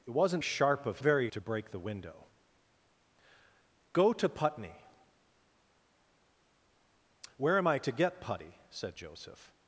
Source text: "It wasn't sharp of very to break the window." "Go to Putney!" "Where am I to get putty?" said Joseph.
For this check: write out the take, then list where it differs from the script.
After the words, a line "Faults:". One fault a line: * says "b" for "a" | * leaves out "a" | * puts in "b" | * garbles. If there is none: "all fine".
"It wasn't sharp of very to break the window." "Go to Putney!" "Where am I to get putty?" said Joseph.
Faults:
all fine